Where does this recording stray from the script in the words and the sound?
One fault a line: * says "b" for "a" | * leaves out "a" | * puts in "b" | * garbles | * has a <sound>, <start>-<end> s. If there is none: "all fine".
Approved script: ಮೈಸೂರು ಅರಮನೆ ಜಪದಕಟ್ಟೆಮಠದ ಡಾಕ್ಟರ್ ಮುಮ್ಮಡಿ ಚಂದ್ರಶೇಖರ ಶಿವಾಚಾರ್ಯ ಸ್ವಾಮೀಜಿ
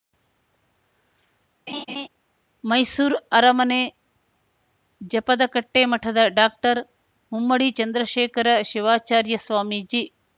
* has a laugh, 1.7-2.1 s